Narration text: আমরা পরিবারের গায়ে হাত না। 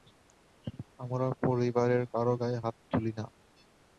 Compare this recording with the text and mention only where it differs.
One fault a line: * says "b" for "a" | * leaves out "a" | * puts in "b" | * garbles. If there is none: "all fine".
* puts in "কারো"
* puts in "তুলি"